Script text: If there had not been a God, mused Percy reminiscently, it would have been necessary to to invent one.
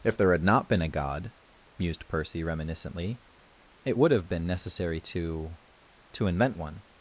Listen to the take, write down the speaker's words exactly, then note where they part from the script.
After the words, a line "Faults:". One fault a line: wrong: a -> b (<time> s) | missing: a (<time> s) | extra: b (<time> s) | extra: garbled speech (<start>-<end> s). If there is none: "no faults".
If there had not been a God, mused Percy reminiscently, it would have been necessary to to invent one.
Faults:
no faults